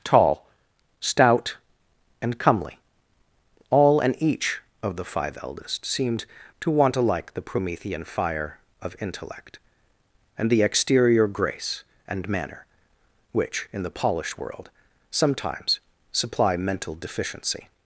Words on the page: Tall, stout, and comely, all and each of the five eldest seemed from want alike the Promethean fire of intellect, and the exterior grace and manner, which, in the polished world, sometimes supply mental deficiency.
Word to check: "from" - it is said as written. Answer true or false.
false